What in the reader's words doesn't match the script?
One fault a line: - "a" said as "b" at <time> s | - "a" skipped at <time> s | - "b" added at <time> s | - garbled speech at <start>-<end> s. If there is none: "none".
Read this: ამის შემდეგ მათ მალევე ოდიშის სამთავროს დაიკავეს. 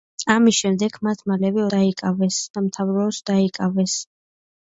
- "ოდიშის" said as "დაიკავეს" at 1.8 s